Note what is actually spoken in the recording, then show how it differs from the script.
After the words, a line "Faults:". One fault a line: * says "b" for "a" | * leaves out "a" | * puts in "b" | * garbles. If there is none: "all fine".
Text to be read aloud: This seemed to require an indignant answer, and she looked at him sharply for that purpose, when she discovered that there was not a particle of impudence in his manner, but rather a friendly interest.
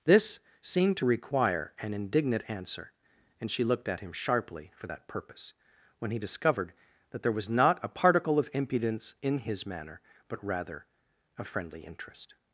This seemed to require an indignant answer, and she looked at him sharply for that purpose, when he discovered that there was not a particle of impudence in his manner, but rather a friendly interest.
Faults:
* says "he" for "she"